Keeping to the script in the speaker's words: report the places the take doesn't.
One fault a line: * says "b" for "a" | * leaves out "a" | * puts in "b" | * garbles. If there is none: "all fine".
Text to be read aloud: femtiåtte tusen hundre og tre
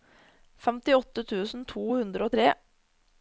* puts in "to"